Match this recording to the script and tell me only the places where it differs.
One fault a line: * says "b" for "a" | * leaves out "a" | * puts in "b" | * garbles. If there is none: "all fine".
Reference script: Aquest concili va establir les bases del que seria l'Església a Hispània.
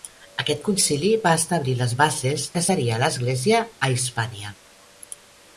* leaves out "del"